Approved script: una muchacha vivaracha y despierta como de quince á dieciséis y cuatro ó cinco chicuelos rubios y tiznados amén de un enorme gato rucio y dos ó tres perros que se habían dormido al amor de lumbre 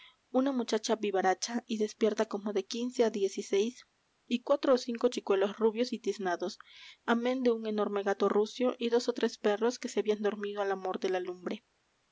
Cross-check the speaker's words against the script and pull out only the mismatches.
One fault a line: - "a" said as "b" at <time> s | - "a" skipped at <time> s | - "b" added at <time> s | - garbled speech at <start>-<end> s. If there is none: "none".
- "la" added at 11.1 s